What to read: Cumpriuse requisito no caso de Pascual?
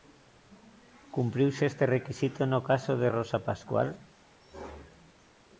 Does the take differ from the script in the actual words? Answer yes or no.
yes